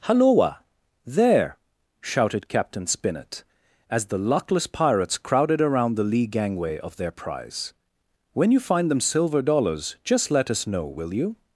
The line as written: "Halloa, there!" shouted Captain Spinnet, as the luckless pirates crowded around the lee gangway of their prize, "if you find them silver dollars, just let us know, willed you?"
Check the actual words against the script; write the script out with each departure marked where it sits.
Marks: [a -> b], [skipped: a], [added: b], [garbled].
"Halloa, there!" shouted Captain Spinnet, as the luckless pirates crowded around the lee gangway of their prize, ["if -> when] you find them silver dollars, just let us know, [willed -> will] you?"